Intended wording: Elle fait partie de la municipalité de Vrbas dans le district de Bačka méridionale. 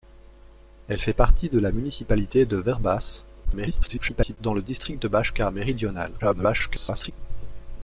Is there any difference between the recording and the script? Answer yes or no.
yes